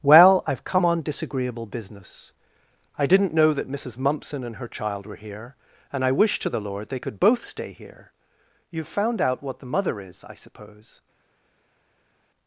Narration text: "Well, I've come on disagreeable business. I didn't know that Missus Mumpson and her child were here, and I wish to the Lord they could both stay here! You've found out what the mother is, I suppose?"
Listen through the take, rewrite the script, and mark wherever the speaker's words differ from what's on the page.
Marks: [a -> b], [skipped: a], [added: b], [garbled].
"Well, I've come on disagreeable business. I didn't know that Missus Mumpson and her child were here, and I wish to the Lord they could both stay here! You've found out what the mother is, I suppose?"